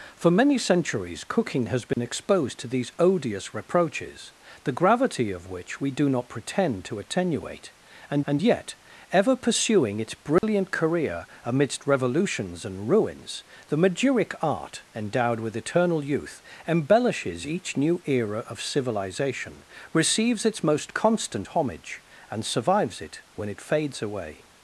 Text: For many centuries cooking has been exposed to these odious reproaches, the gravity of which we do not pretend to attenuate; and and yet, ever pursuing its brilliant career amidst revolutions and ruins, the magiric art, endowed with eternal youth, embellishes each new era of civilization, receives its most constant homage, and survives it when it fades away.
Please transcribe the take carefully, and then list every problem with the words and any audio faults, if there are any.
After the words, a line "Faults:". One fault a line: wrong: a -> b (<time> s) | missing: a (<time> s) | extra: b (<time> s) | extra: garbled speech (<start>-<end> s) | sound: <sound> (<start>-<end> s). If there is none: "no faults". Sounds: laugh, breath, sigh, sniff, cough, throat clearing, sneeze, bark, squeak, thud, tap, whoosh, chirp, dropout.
For many centuries cooking has been exposed to these odious reproaches, the gravity of which we do not pretend to attenuate; and and yet, ever pursuing its brilliant career amidst revolutions and ruins, the magiric art, endowed with eternal youth, embellishes each new era of civilization, receives its most constant homage, and survives it when it fades away.
Faults:
sound: dropout (1.9-2.0 s)
sound: dropout (10.4-10.4 s)